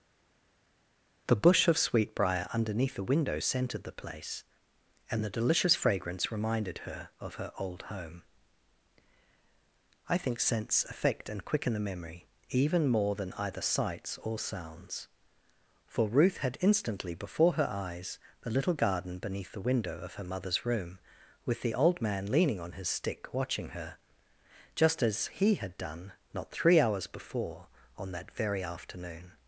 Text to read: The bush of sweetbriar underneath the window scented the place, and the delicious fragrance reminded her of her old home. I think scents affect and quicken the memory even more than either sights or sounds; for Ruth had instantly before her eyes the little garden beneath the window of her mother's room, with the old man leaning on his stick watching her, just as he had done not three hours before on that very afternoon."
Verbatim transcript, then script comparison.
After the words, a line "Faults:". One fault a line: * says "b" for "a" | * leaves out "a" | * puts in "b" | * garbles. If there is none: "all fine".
The bush of sweetbriar underneath the window scented the place, and the delicious fragrance reminded her of her old home. I think scents affect and quicken the memory even more than either sights or sounds; for Ruth had instantly before her eyes the little garden beneath the window of her mother's room, with the old man leaning on his stick watching her, just as he had done not three hours before on that very afternoon."
Faults:
all fine